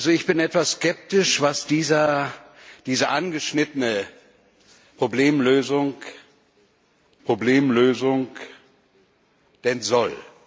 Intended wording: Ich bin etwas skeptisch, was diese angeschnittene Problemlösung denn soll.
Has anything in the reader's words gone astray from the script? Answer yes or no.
yes